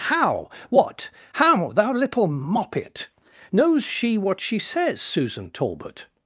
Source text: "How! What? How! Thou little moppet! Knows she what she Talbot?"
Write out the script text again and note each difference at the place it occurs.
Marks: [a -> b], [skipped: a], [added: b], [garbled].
"How! What? How! Thou little moppet! Knows she what she [added: says Susan] Talbot?"